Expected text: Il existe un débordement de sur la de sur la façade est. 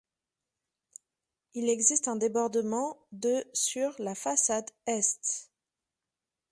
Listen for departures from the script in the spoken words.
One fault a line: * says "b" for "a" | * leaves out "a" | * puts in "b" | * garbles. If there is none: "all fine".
* leaves out "de sur la"